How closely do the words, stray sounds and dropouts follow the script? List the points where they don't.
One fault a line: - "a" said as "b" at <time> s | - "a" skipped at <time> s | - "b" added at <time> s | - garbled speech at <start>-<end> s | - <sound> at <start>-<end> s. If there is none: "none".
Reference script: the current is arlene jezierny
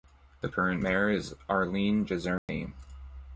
- "mayor" added at 0.8 s
- dropout at 2.4-2.5 s